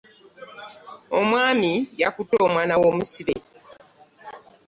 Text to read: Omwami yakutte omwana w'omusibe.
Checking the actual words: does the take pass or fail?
pass